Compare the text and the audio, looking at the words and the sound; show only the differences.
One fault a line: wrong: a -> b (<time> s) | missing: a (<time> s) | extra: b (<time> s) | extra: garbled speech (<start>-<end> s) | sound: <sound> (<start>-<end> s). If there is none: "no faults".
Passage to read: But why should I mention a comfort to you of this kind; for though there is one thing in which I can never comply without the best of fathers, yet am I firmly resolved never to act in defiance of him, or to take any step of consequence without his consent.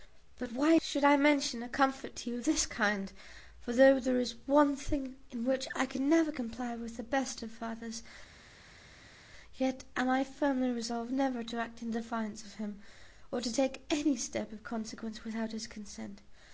wrong: without -> with (6.8 s)